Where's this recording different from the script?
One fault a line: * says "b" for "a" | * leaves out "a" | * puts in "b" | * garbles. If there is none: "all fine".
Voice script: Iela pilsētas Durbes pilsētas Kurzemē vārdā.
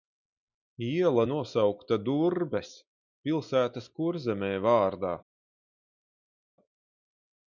* says "nosaukta" for "pilsētas"